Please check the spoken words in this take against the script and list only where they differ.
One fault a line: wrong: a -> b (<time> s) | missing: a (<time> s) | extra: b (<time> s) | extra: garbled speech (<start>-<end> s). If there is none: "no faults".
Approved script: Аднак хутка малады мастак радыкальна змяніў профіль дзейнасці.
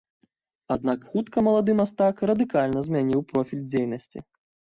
no faults